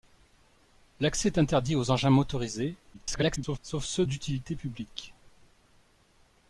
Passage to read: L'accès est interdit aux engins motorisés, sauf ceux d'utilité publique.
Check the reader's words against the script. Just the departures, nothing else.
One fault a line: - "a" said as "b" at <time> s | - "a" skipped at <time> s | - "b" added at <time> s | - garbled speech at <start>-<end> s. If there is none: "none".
- garbled speech at 2.9-3.6 s